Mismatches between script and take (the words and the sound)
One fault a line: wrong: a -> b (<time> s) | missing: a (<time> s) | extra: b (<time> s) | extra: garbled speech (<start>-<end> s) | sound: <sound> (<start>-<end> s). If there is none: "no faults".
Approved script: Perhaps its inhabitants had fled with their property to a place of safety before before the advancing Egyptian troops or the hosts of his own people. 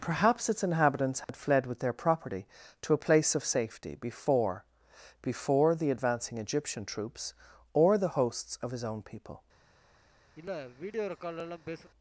sound: dropout (1.2-1.3 s)
sound: sniff (10.4-11.9 s)